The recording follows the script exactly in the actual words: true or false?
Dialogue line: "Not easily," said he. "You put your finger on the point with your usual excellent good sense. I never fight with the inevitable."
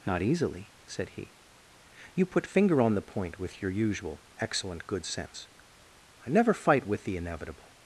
false